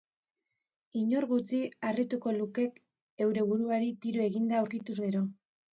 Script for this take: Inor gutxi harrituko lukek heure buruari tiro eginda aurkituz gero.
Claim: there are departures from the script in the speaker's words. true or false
false